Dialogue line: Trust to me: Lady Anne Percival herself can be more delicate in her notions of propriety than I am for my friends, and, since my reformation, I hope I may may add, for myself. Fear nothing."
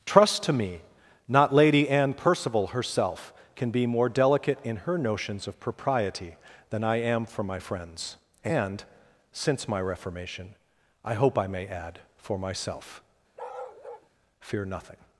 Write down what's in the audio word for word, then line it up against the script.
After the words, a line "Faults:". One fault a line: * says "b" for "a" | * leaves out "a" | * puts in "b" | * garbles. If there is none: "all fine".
Trust to me: not Lady Anne Percival herself can be more delicate in her notions of propriety than I am for my friends, and, since my reformation, I hope I may add, for myself. Fear nothing."
Faults:
* puts in "not"
* leaves out "may"